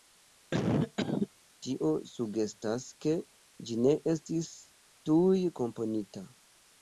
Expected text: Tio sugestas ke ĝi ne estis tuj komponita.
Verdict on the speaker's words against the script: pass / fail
pass